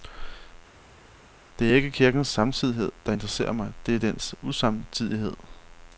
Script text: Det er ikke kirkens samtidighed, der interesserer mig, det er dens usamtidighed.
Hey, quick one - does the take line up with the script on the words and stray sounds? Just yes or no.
yes